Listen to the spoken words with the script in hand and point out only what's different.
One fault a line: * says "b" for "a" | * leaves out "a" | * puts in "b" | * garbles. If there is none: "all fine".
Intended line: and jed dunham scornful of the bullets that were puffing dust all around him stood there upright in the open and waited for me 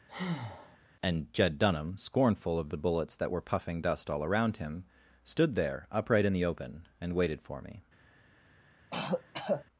all fine